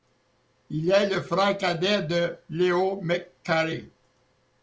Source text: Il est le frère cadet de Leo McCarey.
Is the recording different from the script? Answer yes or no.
no